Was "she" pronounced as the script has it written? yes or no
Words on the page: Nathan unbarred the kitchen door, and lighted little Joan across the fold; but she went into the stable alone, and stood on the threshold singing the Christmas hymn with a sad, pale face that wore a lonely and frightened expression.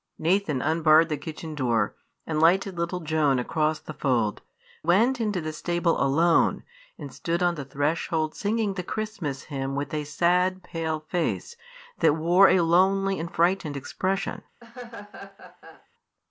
no